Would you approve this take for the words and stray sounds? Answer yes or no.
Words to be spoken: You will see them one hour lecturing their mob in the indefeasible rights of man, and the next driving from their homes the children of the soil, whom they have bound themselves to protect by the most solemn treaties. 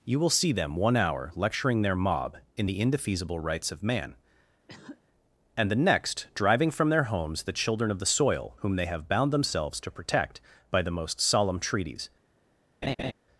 no